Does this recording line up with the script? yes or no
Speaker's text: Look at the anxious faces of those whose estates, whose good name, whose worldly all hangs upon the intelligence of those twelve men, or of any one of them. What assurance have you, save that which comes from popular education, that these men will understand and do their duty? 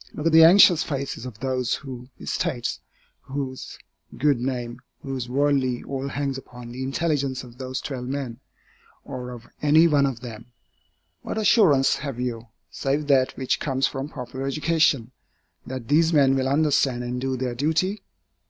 yes